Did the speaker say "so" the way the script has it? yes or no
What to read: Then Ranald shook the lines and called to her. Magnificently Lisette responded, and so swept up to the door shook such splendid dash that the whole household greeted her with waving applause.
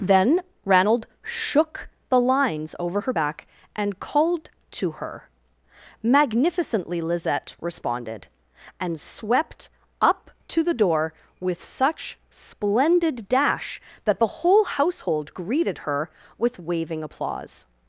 no